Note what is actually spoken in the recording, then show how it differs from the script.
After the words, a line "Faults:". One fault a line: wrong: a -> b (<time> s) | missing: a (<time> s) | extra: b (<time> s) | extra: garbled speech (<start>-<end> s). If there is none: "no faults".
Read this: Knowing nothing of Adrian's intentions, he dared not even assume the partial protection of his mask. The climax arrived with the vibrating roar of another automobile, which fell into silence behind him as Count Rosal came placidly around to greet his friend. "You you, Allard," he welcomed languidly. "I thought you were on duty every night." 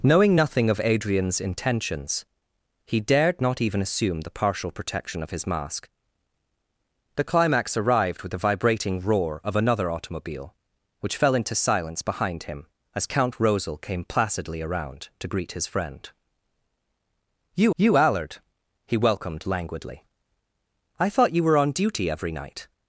Knowing nothing of Adrian's intentions, he dared not even assume the partial protection of his mask. The climax arrived with the vibrating roar of another automobile, which fell into silence behind him as Count Rosal came placidly around to greet his friend. "You you, Allard," he welcomed languidly. "I thought you were on duty every night."
Faults:
no faults